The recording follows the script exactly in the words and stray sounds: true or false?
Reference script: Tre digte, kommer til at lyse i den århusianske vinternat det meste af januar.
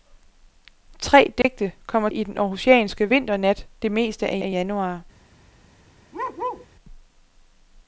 false